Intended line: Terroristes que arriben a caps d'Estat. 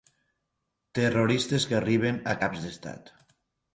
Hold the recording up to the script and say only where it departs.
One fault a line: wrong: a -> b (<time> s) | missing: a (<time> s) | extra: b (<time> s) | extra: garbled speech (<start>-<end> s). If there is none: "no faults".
no faults